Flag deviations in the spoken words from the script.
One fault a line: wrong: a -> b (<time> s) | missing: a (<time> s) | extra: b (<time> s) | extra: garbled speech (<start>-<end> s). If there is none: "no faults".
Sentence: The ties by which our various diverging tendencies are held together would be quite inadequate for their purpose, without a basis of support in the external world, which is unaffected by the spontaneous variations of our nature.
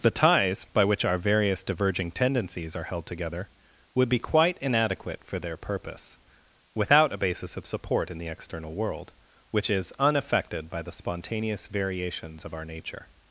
no faults